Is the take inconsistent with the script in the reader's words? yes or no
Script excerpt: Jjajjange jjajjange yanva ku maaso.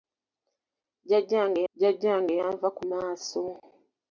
no